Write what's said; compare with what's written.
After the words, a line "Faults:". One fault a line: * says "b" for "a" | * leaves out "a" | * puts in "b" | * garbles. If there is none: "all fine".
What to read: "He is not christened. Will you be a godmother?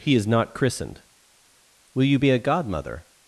"He is not christened. Will you be a godmother?
Faults:
all fine